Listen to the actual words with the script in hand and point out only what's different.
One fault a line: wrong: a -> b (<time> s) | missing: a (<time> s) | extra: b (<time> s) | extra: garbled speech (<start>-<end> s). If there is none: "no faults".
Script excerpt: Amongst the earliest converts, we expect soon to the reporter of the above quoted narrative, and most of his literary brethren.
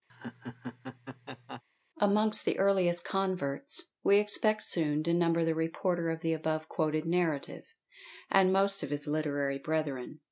extra: number (5.1 s)